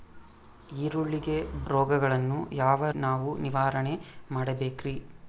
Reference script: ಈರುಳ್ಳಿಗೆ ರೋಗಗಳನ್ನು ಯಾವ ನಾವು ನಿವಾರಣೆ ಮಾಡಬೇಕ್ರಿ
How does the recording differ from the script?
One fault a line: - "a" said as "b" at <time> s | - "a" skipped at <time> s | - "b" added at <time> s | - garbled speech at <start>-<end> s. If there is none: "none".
none